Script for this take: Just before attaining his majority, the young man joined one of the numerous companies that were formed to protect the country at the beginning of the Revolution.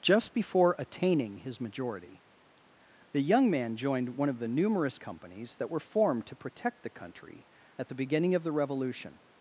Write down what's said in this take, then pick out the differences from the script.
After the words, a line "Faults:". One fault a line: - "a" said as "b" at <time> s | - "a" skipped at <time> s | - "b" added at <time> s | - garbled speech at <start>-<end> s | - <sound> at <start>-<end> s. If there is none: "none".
Just before attaining his majority, the young man joined one of the numerous companies that were formed to protect the country at the beginning of the Revolution.
Faults:
none